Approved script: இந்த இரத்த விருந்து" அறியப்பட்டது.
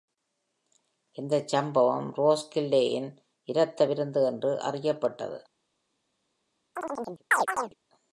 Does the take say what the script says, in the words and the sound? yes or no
no